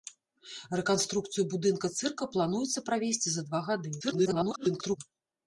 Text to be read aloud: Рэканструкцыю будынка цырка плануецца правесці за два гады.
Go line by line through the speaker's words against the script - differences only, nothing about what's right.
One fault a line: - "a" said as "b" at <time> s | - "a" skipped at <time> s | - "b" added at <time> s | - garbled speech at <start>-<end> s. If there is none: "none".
- garbled speech at 4.0-5.0 s